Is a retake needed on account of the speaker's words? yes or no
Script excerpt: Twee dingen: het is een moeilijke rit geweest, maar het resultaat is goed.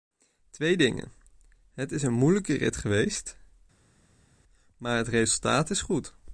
no